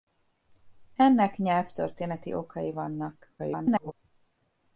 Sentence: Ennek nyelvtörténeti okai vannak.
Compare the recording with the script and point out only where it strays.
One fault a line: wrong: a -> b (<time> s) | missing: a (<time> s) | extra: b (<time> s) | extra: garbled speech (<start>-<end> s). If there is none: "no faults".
extra: garbled speech (3.4-3.9 s)